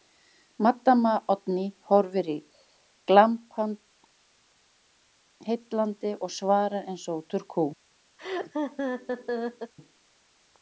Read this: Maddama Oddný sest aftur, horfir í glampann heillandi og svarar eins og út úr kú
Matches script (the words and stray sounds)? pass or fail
fail